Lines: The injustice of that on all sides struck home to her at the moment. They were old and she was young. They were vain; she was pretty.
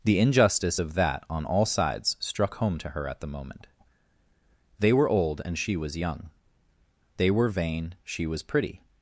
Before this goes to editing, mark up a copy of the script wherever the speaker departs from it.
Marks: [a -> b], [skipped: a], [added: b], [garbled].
The injustice of that on all sides struck home to her at the moment. They were old and she was young. They were vain; she was pretty.